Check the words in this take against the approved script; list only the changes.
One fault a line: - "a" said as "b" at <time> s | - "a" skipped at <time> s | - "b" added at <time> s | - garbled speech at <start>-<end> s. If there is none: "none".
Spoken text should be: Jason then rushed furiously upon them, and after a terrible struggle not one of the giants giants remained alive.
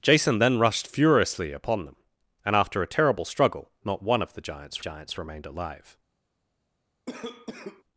none